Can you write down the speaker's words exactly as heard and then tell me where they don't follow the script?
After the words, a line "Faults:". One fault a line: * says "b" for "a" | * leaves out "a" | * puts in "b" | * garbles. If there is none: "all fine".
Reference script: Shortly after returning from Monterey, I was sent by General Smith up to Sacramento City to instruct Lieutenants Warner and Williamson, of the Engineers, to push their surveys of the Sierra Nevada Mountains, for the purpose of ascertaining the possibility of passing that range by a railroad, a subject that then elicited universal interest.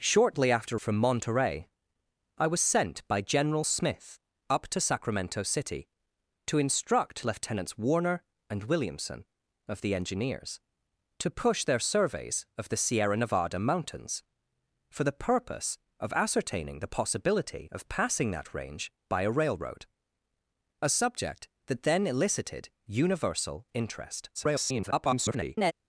Shortly after from Monterey, I was sent by General Smith up to Sacramento City to instruct Lieutenants Warner and Williamson, of the Engineers, to push their surveys of the Sierra Nevada Mountains, for the purpose of ascertaining the possibility of passing that range by a railroad, a subject that then elicited universal interest. [garbled]
Faults:
* leaves out "returning"
* garbles